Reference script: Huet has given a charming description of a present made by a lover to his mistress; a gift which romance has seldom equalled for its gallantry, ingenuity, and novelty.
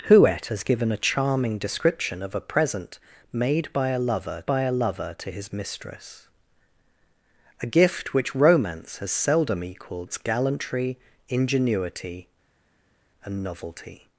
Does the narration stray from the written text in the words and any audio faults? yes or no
yes